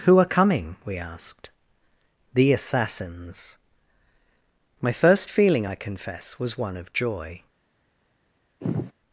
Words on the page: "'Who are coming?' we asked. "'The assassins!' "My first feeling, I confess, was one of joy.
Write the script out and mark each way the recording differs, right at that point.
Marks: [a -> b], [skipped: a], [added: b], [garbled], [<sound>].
"'Who are coming?' we asked. "'The assassins!' "My first feeling, I confess, was one of joy. [sigh]